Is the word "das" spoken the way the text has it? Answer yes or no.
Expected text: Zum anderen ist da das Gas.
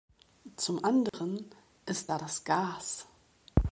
yes